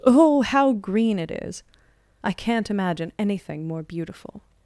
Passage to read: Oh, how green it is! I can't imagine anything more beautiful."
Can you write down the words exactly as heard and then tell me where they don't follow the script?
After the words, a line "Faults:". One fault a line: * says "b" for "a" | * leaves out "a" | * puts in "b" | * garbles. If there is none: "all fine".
Oh, how green it is! I can't imagine anything more beautiful."
Faults:
all fine